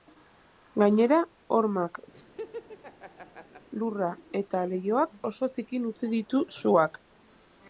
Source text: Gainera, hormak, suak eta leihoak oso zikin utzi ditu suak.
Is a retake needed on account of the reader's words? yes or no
yes